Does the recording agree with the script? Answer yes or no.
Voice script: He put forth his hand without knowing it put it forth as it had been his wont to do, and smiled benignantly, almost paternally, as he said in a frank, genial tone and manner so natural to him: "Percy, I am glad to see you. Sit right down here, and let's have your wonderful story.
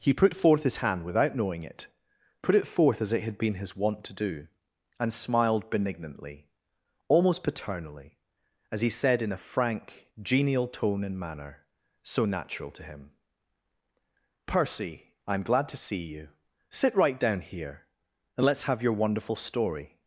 yes